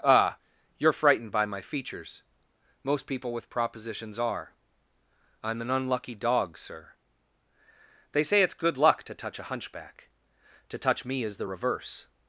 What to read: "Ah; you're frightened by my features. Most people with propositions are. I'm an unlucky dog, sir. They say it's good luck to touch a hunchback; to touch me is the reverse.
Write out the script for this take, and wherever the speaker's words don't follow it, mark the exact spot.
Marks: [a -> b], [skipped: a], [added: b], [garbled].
"Ah; you're frightened by my features. Most people with propositions are. I'm an unlucky dog, sir. They say it's good luck to touch a hunchback; to touch me is the reverse.